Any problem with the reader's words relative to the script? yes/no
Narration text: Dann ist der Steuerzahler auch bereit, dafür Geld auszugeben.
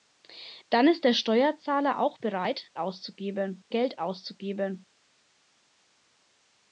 yes